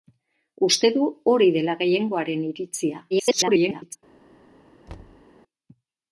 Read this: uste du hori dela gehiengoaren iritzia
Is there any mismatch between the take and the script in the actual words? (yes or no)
yes